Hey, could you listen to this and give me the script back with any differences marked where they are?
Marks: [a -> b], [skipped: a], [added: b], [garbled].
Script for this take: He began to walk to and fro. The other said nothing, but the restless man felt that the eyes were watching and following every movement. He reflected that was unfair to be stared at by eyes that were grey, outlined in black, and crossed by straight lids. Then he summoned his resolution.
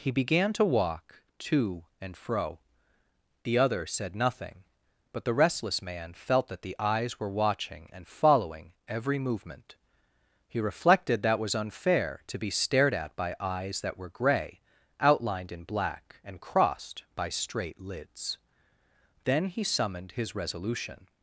He began to walk to and fro. The other said nothing, but the restless man felt that the eyes were watching and following every movement. He reflected that was unfair to be stared at by eyes that were grey, outlined in black, and crossed by straight lids. Then he summoned his resolution.